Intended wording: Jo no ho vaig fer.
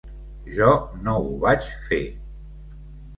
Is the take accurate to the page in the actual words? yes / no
yes